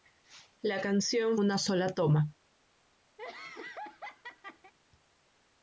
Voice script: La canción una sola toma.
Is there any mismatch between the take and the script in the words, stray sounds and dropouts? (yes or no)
yes